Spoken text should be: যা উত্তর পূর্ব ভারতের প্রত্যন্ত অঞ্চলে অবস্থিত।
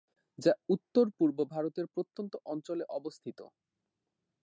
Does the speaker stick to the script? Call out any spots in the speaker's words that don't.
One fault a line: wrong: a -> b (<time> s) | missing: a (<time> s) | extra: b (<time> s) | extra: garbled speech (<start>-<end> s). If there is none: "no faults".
no faults